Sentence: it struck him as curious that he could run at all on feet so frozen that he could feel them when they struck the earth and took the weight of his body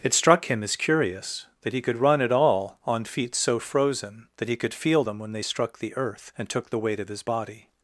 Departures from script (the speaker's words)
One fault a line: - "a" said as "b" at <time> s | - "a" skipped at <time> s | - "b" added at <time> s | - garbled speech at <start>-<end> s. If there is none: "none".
none